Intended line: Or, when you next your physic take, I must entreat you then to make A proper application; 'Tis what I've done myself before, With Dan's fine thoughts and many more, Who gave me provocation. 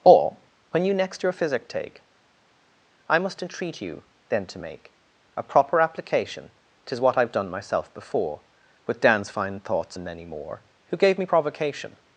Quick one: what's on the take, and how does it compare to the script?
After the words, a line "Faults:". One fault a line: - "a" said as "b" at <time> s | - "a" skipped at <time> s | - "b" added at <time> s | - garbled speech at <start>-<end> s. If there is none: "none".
Or, when you next your physic take, I must entreat you then to make A proper application; 'Tis what I've done myself before, With Dan's fine thoughts and many more, Who gave me provocation.
Faults:
none